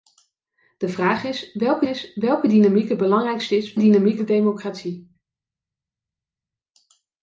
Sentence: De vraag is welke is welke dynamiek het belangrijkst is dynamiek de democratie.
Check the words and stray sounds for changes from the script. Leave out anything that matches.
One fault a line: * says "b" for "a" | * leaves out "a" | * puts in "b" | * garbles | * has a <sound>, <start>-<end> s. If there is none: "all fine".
all fine